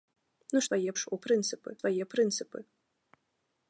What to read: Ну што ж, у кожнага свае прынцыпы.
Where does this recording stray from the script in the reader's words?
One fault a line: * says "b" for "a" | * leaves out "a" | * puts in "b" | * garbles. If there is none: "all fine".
* says "свае" for "што"
* says "прынцыпы" for "кожнага"